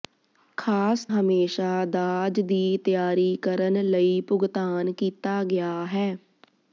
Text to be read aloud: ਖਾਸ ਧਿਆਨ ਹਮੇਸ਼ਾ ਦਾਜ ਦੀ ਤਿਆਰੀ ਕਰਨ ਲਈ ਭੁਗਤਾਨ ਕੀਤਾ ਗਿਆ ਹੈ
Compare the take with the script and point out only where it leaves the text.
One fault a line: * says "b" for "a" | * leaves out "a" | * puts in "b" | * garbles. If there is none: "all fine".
* leaves out "ਧਿਆਨ"